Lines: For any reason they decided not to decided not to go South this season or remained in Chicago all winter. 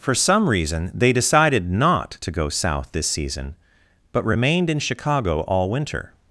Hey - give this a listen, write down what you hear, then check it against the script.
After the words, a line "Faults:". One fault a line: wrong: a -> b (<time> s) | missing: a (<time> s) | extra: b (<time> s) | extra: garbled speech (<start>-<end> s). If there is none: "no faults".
For some reason they decided not to go South this season but remained in Chicago all winter.
Faults:
wrong: any -> some (0.1 s)
missing: decided not to (2.3 s)
wrong: or -> but (4.1 s)